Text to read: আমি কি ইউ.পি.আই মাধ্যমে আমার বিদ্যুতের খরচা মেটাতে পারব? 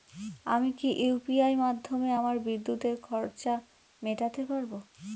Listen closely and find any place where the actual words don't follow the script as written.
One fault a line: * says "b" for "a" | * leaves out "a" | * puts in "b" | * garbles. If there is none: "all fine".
all fine